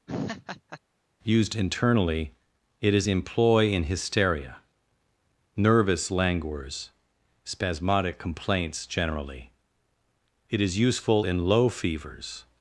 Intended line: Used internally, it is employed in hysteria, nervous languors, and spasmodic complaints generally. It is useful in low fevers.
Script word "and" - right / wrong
wrong